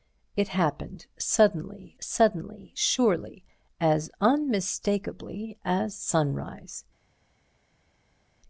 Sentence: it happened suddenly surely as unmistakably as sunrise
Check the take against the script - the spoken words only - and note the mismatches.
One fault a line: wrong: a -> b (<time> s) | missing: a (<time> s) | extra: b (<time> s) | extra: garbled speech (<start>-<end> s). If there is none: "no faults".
extra: suddenly (2.0 s)